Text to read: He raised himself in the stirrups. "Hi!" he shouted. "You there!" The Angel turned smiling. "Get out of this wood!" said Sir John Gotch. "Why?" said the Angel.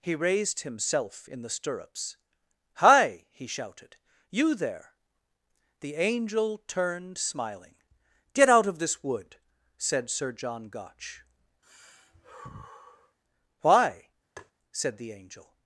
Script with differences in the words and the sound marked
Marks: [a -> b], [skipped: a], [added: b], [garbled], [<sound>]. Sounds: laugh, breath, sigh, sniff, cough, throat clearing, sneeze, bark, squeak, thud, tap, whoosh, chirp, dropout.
He raised himself in the stirrups. "Hi!" he shouted. "You there!" The Angel turned smiling. "Get out of this wood!" said Sir John Gotch. [sigh] "Why?" [tap] said the Angel.